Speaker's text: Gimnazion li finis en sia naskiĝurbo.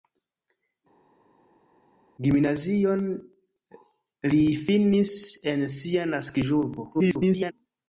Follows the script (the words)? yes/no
no